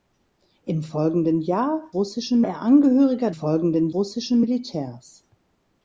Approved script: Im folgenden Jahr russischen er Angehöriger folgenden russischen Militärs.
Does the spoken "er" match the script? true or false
true